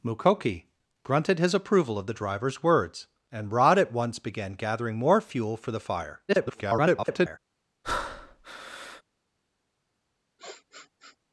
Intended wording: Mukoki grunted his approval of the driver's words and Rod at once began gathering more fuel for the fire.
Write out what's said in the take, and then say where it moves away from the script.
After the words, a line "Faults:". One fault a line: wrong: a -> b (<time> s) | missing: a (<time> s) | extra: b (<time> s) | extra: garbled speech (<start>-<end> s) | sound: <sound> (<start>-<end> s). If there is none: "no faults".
Mukoki grunted his approval of the driver's words and Rod at once began gathering more fuel for the fire. [garbled]
Faults:
extra: garbled speech (6.3-7.4 s)
sound: breath (7.8-9.0 s)
sound: sniff (10.4-11.2 s)